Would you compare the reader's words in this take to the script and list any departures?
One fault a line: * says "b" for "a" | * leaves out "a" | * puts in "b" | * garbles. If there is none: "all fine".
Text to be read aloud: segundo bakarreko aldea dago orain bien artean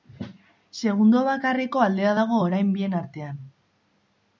all fine